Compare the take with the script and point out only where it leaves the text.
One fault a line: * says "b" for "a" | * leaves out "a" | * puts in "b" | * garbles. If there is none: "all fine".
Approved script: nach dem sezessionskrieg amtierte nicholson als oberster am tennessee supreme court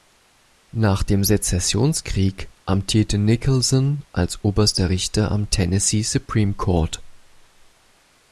* puts in "richter"